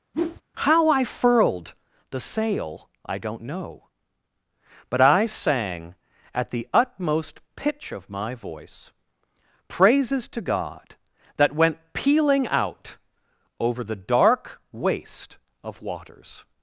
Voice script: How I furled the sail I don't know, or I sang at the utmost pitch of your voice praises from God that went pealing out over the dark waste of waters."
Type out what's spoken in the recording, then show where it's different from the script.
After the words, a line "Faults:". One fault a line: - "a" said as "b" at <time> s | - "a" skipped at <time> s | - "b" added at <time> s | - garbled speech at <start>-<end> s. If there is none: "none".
How I furled the sail I don't know, but I sang at the utmost pitch of my voice praises to God that went pealing out over the dark waste of waters."
Faults:
- "or" said as "but" at 4.9 s
- "your" said as "my" at 8.1 s
- "from" said as "to" at 10.3 s